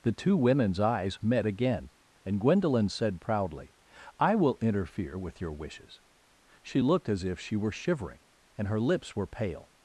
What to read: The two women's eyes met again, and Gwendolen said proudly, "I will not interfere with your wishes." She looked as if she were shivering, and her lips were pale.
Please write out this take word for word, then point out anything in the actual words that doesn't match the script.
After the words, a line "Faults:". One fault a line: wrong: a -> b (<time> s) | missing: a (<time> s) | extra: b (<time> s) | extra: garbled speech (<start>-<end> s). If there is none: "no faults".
The two women's eyes met again, and Gwendolen said proudly, "I will interfere with your wishes." She looked as if she were shivering, and her lips were pale.
Faults:
missing: not (4.6 s)